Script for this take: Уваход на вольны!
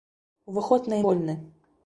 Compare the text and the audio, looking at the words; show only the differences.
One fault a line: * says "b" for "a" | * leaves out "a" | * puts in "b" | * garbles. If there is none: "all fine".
all fine